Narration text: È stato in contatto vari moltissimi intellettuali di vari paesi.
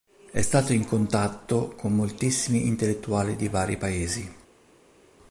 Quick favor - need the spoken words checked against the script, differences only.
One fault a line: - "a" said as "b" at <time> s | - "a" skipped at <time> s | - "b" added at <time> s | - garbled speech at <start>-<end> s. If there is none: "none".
- "vari" said as "con" at 1.8 s